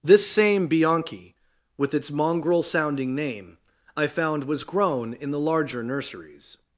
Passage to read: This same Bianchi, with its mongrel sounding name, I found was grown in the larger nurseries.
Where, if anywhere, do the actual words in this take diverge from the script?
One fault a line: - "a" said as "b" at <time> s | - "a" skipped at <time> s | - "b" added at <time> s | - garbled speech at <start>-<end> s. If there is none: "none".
none